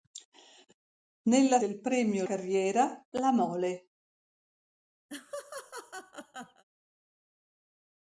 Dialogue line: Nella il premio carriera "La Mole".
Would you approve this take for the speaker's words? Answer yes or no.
yes